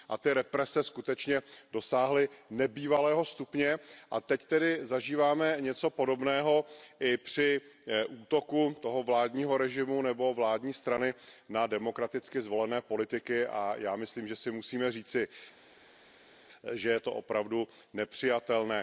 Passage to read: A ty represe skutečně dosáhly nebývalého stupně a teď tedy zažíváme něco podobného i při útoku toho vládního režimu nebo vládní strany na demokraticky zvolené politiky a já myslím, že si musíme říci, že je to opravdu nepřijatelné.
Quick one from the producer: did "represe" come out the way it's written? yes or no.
yes